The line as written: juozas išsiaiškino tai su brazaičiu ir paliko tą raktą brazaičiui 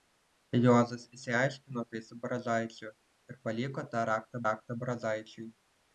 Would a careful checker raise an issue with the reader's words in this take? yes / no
yes